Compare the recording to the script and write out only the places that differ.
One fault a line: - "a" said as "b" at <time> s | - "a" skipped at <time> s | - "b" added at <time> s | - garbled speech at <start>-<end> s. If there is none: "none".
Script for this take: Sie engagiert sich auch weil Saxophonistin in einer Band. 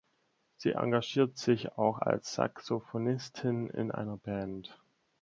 - "weil" said as "als" at 1.9 s